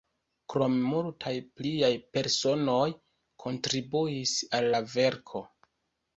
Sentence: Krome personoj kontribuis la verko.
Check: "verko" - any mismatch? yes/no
no